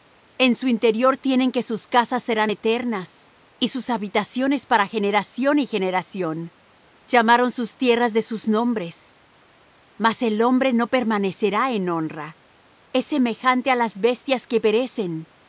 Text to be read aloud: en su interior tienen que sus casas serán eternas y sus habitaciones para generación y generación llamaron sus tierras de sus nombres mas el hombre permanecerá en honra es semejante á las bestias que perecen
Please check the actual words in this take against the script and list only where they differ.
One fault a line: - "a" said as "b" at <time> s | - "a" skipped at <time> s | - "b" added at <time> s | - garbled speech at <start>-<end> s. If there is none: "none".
- "no" added at 10.7 s